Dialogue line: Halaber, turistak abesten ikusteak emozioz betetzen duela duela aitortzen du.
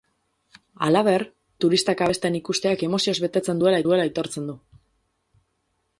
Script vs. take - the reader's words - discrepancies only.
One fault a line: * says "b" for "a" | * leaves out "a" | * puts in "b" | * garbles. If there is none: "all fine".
all fine